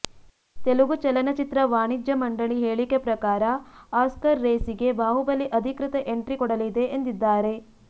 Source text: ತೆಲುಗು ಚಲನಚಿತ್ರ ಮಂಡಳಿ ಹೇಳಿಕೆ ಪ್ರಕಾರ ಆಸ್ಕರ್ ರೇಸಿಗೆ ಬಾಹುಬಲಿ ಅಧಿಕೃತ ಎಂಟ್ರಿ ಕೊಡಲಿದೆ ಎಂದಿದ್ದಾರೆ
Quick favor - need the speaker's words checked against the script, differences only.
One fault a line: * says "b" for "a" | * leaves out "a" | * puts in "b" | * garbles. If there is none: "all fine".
* puts in "ವಾಣಿಜ್ಯ"